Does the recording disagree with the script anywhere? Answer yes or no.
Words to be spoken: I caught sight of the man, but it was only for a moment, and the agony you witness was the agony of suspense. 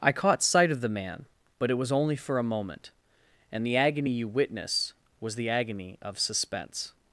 no